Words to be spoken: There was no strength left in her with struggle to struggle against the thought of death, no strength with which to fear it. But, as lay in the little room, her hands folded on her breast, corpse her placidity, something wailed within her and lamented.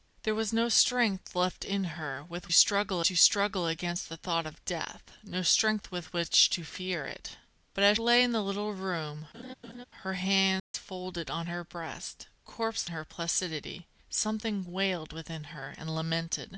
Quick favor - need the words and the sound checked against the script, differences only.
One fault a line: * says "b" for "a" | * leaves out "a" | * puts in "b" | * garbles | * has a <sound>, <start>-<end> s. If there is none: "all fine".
* has a laugh, 9.3-9.9 s
* has a dropout, 10.6-10.7 s